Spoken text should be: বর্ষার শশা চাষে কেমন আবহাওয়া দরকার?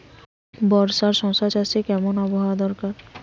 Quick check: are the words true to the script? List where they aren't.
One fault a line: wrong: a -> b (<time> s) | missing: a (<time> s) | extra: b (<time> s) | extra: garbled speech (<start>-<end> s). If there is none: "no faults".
no faults